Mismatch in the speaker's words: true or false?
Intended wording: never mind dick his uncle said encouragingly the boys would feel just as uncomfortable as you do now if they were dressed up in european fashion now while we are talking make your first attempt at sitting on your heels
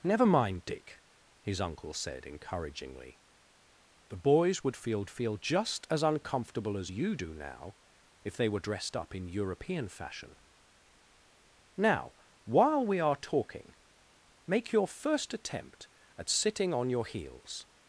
true